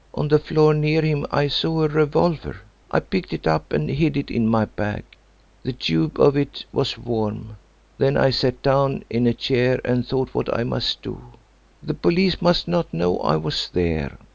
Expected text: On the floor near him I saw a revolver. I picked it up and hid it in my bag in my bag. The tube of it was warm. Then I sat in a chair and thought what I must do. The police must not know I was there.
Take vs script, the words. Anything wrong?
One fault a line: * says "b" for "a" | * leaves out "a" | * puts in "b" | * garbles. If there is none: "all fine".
* leaves out "in my bag"
* puts in "down"